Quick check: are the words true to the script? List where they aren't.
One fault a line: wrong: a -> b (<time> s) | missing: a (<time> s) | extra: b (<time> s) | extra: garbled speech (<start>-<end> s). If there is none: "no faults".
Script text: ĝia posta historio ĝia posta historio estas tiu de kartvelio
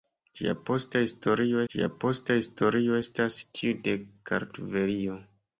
no faults